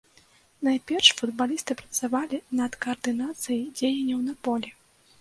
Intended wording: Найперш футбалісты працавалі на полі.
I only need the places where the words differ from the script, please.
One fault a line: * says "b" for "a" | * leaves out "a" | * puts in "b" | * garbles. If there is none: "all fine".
* puts in "над каардынацыяй дзеянняў"